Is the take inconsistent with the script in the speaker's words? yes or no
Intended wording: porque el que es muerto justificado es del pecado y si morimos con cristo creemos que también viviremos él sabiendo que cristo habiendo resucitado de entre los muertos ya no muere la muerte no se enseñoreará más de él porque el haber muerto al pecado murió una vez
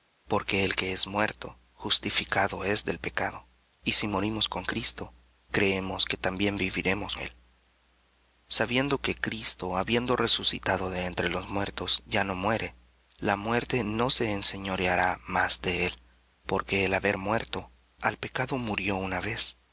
no